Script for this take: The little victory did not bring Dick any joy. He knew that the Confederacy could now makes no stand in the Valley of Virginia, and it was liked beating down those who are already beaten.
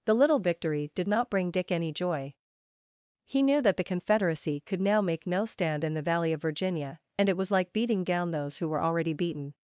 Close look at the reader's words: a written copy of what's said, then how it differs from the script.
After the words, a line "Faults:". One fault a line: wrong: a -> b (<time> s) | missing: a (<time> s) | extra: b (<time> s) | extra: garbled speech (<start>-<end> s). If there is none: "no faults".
The little victory did not bring Dick any joy. He knew that the Confederacy could now make no stand in the Valley of Virginia, and it was like beating down those who were already beaten.
Faults:
wrong: makes -> make (5.0 s)
wrong: liked -> like (7.5 s)
wrong: are -> were (8.7 s)